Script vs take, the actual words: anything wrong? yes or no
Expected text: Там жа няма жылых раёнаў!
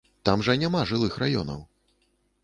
no